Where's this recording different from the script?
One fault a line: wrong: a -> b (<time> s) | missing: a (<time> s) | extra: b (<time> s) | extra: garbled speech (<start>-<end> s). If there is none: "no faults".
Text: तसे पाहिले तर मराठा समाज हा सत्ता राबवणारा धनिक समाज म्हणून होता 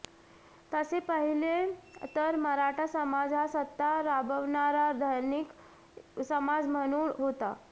no faults